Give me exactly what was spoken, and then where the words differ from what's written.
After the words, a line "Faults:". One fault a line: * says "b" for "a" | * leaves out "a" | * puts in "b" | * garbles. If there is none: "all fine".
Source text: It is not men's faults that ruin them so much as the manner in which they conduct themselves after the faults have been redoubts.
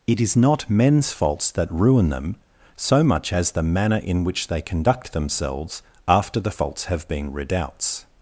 It is not men's faults that ruin them so much as the manner in which they conduct themselves after the faults have been redoubts.
Faults:
all fine